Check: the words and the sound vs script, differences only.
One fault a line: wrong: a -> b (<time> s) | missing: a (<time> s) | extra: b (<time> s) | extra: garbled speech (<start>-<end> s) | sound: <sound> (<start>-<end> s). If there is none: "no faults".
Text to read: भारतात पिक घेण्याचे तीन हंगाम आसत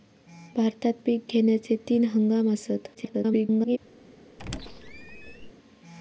extra: garbled speech (2.9-3.8 s)
sound: squeak (4.4-5.5 s)